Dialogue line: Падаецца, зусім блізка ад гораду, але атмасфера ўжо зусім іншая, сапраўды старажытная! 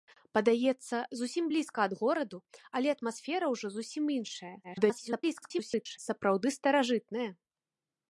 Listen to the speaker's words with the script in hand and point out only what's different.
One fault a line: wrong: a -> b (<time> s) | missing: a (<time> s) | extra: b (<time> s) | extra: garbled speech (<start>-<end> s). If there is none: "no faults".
extra: garbled speech (4.6-6.0 s)